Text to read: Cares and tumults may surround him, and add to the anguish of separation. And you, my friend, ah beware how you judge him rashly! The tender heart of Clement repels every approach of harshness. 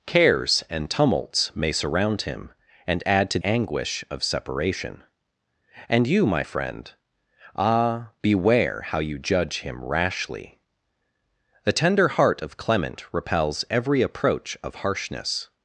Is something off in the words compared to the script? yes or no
yes